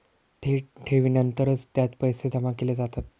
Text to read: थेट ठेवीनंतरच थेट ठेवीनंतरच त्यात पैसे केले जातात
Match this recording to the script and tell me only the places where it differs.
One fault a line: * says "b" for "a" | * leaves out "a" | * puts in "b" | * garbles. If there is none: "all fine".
* leaves out "थेट ठेवीनंतरच"
* puts in "जमा"